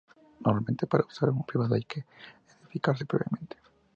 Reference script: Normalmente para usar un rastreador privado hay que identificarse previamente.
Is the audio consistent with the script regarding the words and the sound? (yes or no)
no